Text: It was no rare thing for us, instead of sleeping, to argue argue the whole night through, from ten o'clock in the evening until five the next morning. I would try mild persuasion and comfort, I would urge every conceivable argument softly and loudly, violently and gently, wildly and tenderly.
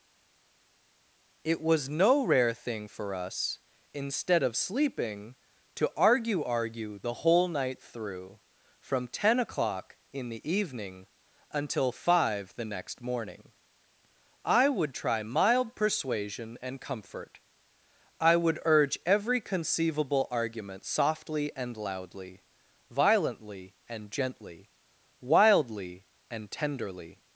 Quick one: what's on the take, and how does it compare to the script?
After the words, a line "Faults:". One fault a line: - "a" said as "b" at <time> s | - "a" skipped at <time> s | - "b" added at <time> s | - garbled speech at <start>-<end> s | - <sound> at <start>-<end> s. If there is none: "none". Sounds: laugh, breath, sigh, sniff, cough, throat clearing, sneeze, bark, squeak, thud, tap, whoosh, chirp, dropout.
It was no rare thing for us, instead of sleeping, to argue argue the whole night through, from ten o'clock in the evening until five the next morning. I would try mild persuasion and comfort, I would urge every conceivable argument softly and loudly, violently and gently, wildly and tenderly.
Faults:
none